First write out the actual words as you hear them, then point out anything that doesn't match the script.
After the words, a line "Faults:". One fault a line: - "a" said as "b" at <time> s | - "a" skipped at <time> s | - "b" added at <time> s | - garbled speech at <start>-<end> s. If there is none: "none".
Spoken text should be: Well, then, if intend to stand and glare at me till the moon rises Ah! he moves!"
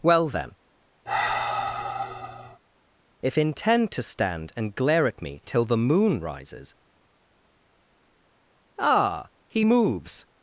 Well, then, if intend to stand and glare at me till the moon rises Ah! he moves!"
Faults:
none